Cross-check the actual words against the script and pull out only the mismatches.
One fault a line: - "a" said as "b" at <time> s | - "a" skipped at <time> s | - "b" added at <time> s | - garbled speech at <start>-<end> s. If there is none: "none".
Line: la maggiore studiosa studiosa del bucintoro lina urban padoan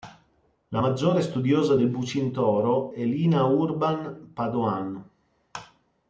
- "studiosa" skipped at 1.7 s
- "è" added at 2.9 s